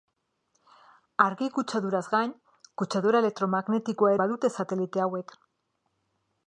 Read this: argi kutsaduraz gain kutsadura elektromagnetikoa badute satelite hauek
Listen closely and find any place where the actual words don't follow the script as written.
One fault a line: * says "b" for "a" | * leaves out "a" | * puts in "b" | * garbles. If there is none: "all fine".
all fine